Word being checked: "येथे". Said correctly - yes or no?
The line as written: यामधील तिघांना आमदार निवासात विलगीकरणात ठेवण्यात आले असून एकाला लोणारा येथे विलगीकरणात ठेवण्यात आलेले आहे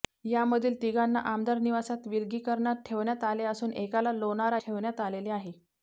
no